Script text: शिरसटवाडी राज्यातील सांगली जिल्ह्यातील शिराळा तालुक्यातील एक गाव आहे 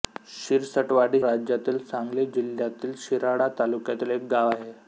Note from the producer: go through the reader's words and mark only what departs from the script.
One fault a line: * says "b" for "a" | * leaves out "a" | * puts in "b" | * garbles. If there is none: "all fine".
all fine